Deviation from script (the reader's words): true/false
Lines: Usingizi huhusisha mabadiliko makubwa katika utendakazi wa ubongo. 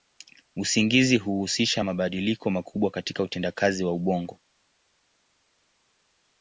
false